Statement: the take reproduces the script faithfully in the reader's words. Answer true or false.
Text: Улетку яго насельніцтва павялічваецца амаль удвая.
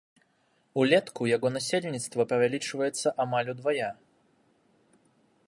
true